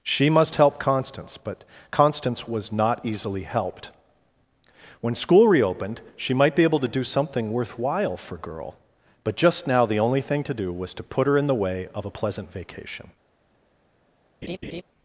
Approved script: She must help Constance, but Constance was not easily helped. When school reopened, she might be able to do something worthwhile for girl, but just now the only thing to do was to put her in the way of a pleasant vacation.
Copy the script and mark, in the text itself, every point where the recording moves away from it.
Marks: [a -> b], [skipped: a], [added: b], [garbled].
She must help Constance, but Constance was not easily helped. When school reopened, she might be able to do something worthwhile for girl, but just now the only thing to do was to put her in the way of a pleasant vacation.